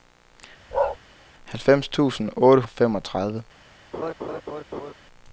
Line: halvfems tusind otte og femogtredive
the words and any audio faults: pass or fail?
fail